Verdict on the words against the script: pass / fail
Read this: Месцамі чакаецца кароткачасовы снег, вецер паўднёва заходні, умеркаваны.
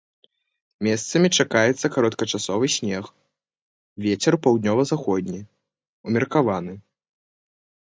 pass